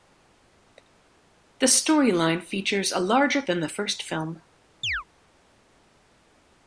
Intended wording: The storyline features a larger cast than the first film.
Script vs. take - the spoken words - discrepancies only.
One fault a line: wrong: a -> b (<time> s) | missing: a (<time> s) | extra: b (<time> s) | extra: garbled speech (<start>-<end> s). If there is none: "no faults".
missing: cast (3.4 s)